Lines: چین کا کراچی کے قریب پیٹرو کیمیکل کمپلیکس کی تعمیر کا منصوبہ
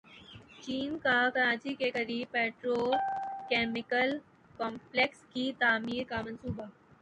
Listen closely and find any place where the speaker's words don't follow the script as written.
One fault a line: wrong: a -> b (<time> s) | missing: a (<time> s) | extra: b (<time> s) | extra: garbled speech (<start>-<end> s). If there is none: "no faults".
no faults